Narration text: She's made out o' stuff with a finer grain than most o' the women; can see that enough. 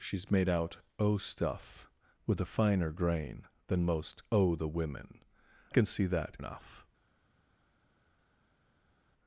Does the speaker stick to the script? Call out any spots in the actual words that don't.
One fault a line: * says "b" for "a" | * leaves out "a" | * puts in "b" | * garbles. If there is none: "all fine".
all fine